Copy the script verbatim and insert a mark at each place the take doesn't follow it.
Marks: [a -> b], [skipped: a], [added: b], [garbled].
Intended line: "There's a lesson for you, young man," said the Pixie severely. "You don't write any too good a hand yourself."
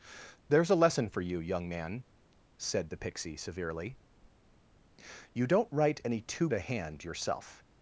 "There's a lesson for you, young man," said the Pixie severely. "You don't write any too [skipped: good] a hand yourself."